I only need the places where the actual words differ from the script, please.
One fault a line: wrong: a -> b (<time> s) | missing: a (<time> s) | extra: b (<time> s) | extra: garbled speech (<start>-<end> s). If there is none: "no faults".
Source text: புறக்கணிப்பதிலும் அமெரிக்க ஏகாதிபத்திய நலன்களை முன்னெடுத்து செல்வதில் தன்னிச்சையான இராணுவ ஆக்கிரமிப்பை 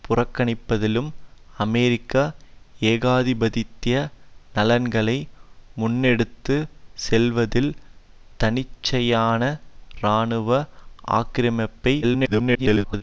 extra: garbled speech (12.0-13.0 s)